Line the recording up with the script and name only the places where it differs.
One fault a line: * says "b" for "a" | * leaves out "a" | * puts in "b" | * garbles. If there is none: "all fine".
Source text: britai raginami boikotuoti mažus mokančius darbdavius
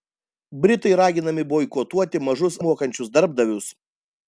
all fine